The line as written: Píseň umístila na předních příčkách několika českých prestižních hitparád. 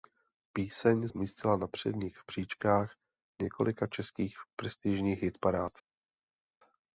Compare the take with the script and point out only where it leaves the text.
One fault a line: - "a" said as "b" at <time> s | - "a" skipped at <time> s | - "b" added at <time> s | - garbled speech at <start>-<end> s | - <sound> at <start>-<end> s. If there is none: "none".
none